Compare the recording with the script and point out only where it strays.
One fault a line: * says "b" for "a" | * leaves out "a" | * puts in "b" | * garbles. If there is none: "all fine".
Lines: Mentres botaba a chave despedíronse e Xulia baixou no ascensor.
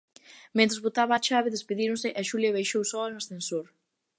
* puts in "soa"